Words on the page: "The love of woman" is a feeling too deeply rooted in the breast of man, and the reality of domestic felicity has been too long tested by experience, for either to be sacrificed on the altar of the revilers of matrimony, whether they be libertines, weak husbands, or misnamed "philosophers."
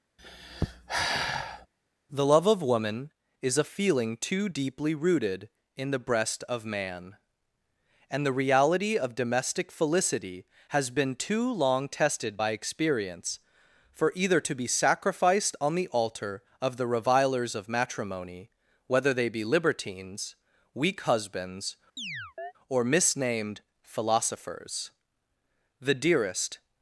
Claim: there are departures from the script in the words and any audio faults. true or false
true